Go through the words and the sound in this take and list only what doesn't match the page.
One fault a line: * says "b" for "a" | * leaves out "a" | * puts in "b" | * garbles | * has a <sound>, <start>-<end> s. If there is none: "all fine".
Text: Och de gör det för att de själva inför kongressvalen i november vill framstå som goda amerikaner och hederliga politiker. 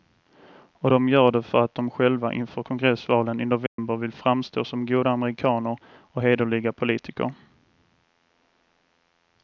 * has a dropout, 3.7-3.8 s